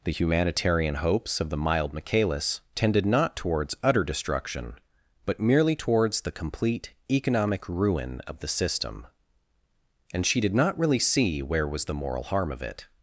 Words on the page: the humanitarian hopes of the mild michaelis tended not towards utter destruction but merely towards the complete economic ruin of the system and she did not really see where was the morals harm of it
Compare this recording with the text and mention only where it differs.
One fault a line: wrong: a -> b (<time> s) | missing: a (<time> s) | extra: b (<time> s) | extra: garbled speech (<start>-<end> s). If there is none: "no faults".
wrong: morals -> moral (11.9 s)